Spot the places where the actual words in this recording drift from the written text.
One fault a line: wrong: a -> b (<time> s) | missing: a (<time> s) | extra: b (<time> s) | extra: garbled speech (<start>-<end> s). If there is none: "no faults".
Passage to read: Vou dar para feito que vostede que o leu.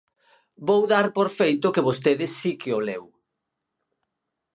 wrong: para -> por (1.2 s)
extra: si (2.4 s)